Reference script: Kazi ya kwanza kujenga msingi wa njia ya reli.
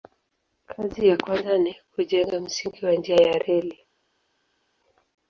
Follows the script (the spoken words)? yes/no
no